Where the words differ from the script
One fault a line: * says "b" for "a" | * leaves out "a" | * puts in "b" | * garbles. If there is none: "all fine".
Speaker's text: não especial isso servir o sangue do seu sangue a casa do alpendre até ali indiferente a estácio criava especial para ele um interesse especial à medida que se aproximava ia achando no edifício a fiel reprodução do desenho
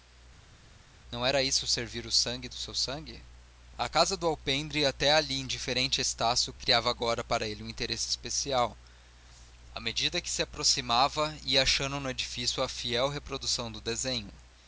* says "era" for "especial"
* says "agora" for "especial"